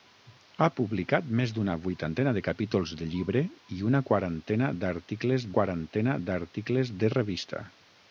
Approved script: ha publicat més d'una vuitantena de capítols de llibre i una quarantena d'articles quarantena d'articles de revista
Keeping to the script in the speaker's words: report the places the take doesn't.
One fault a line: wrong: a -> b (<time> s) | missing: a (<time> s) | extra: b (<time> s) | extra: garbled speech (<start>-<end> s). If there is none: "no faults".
no faults